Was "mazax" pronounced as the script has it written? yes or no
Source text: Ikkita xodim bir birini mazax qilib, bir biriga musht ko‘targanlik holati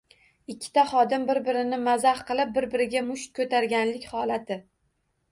yes